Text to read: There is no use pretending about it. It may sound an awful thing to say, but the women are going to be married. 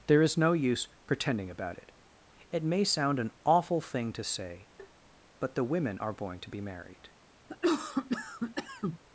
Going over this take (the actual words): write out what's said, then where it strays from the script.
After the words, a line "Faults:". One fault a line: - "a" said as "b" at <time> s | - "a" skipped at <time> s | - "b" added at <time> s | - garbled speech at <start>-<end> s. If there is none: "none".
There is no use pretending about it. It may sound an awful thing to say, but the women are going to be married.
Faults:
none